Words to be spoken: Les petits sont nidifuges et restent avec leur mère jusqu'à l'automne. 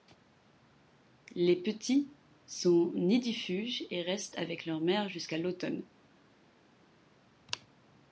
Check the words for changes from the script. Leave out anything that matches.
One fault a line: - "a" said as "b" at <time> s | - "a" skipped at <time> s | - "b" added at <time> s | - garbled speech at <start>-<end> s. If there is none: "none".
none